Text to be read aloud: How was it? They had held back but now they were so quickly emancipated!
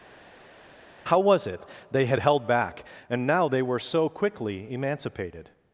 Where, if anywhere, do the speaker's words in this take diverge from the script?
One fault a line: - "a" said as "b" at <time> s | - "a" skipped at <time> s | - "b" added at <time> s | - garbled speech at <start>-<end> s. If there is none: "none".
- "but" said as "and" at 3.1 s